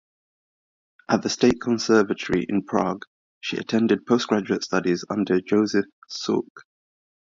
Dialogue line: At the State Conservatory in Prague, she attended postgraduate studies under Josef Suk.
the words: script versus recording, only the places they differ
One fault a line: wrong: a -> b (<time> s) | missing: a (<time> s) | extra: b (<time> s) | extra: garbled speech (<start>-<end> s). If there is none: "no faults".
no faults